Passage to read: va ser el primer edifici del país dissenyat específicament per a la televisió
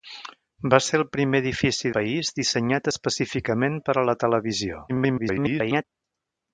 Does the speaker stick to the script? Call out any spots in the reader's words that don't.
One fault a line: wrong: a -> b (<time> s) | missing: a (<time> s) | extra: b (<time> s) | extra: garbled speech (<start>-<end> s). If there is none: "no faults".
missing: del (1.9 s)
extra: garbled speech (4.9-5.8 s)